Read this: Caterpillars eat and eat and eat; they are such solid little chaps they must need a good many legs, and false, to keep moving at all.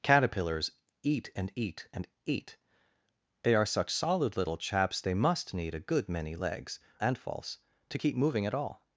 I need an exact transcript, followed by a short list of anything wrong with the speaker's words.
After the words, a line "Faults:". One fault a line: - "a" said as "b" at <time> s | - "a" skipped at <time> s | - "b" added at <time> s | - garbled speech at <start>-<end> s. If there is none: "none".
Caterpillars eat and eat and eat; they are such solid little chaps they must need a good many legs, and false, to keep moving at all.
Faults:
none